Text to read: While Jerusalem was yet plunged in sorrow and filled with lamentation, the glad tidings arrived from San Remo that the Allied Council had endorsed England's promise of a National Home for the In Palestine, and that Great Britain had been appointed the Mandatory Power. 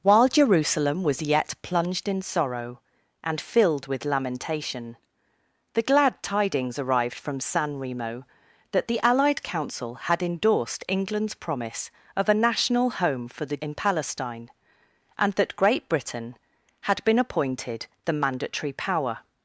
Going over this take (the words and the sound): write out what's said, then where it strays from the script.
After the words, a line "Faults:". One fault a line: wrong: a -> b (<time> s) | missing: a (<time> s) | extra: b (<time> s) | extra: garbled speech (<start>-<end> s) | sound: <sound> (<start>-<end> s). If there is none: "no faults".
While Jerusalem was yet plunged in sorrow and filled with lamentation, the glad tidings arrived from San Remo that the Allied Council had endorsed England's promise of a National Home for the In Palestine, and that Great Britain had been appointed the Mandatory Power.
Faults:
no faults